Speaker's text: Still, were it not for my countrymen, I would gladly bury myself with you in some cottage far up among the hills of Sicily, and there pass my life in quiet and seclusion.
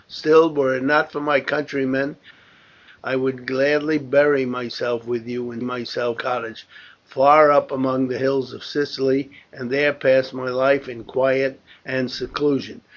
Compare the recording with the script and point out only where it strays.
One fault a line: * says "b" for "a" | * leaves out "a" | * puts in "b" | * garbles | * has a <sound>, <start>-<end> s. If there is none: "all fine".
* says "myself" for "some"